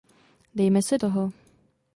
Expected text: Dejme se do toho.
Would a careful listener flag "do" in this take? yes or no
yes